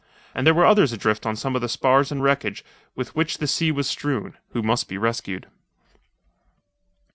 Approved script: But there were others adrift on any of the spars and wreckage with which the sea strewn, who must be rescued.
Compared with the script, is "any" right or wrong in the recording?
wrong